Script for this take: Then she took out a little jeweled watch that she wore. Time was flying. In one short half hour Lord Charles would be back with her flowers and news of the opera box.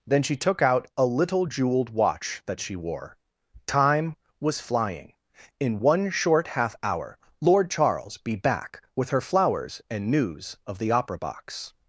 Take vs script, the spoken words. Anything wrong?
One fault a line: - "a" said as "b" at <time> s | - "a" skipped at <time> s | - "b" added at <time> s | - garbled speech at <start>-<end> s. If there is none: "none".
- "would" skipped at 8.2 s